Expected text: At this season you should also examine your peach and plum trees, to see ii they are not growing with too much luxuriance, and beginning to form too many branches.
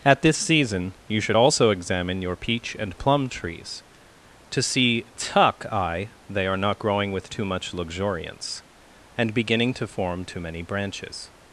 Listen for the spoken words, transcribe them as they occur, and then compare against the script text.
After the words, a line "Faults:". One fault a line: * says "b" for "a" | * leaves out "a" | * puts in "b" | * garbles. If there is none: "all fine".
At this season you should also examine your peach and plum trees, to see tuck eye they are not growing with too much luxuriance, and beginning to form too many branches.
Faults:
* says "tuck eye" for "ii"